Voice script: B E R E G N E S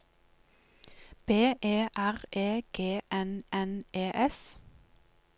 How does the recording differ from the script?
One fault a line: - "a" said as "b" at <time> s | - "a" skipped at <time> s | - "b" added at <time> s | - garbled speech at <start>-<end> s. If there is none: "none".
- "N" added at 3.5 s